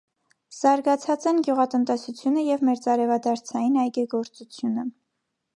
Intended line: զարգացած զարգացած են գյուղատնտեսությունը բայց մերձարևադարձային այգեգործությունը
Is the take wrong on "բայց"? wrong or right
wrong